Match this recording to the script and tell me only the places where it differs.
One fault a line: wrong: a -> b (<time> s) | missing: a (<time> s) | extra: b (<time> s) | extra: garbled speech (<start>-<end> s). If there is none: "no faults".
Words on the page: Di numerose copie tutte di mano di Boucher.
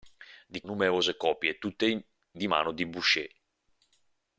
no faults